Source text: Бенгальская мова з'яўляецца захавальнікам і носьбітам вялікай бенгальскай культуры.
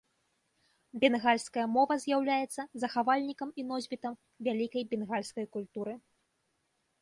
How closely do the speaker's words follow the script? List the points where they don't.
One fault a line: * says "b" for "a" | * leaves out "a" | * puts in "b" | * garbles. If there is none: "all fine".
all fine